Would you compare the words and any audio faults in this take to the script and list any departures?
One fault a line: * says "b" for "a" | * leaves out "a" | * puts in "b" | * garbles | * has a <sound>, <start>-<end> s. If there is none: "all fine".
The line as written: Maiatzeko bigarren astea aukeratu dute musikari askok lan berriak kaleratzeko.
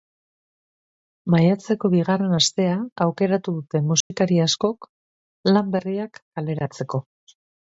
* has a dropout, 4.0-4.1 s